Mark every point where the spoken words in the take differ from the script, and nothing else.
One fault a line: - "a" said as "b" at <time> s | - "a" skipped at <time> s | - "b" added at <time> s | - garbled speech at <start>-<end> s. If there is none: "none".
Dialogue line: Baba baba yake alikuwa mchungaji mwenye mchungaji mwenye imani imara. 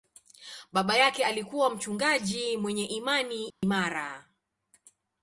- "baba" skipped at 1.0 s
- "mchungaji mwenye" skipped at 2.8 s